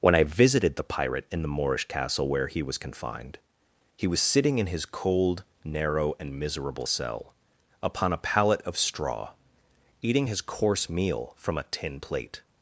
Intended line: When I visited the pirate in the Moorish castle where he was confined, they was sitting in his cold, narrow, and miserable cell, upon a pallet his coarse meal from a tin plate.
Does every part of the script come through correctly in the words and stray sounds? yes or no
no